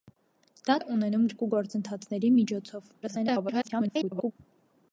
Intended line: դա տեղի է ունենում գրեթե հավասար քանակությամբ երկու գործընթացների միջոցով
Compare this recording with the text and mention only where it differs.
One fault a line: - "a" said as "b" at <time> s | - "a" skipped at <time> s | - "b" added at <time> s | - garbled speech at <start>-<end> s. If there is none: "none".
- "տեղի" skipped at 0.8 s
- "գրեթե հավասար քանակությամբ" skipped at 1.2 s
- garbled speech at 3.0-4.3 s